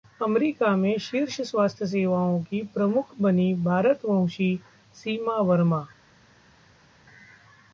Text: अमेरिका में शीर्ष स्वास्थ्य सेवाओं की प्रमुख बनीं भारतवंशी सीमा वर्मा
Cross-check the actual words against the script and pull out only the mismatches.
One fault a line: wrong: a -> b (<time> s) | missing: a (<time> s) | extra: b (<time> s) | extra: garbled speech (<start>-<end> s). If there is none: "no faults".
no faults